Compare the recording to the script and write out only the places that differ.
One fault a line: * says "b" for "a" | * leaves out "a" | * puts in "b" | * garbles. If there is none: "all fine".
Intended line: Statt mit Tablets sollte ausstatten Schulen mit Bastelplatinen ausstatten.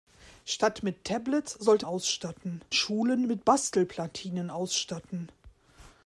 all fine